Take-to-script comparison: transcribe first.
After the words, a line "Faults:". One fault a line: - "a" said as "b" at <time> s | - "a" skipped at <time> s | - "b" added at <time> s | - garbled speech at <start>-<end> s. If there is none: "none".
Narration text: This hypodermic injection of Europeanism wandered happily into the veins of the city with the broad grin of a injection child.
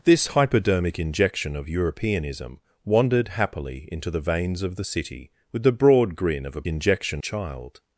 This hypodermic injection of Europeanism wandered happily into the veins of the city with the broad grin of a injection child.
Faults:
none